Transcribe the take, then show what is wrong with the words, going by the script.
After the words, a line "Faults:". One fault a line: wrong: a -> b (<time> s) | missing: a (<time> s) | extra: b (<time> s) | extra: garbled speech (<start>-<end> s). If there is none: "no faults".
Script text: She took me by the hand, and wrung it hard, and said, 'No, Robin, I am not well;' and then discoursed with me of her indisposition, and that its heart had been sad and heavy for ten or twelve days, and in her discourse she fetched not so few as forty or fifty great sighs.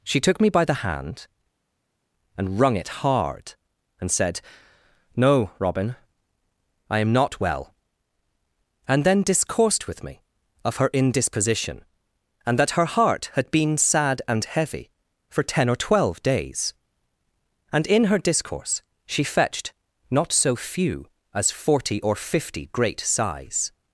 She took me by the hand, and wrung it hard, and said, 'No, Robin, I am not well;' and then discoursed with me of her indisposition, and that her heart had been sad and heavy for ten or twelve days, and in her discourse she fetched not so few as forty or fifty great sighs.
Faults:
wrong: its -> her (12.7 s)